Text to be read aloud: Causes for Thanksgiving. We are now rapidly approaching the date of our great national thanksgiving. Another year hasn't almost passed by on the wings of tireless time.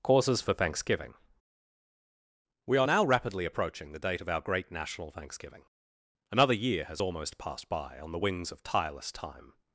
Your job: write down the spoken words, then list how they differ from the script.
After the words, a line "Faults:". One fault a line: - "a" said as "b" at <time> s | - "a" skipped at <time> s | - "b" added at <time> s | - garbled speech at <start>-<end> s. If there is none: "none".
Causes for Thanksgiving. We are now rapidly approaching the date of our great national thanksgiving. Another year has almost passed by on the wings of tireless time.
Faults:
- "hasn't" said as "has" at 6.8 s